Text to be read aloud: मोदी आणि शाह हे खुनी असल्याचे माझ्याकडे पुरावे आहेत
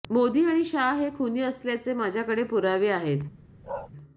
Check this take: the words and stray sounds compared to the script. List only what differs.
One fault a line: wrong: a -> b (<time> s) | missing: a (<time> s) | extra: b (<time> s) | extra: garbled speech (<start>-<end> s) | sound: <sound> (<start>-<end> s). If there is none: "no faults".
sound: bark (3.6-3.9 s)